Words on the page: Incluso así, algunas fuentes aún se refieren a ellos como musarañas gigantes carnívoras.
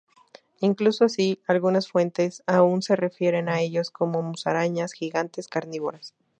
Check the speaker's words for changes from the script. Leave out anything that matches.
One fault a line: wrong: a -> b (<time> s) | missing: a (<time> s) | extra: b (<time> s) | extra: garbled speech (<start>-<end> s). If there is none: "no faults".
no faults